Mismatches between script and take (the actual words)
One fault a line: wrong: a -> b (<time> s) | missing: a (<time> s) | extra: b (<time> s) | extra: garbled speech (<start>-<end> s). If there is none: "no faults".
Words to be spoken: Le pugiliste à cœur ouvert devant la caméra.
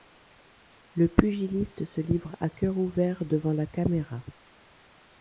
extra: se livre (1.9 s)